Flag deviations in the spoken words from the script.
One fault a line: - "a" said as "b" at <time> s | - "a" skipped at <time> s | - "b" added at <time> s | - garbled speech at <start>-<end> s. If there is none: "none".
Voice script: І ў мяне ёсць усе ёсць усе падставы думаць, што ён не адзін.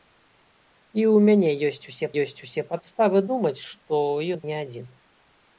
none